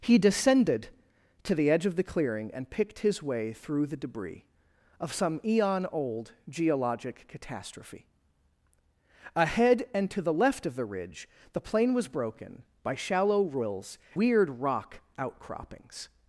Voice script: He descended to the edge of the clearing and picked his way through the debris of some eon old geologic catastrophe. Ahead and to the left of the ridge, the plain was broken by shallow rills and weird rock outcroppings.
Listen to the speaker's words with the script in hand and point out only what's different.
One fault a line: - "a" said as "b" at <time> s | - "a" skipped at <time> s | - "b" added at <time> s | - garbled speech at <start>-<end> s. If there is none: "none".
- "and" skipped at 14.0 s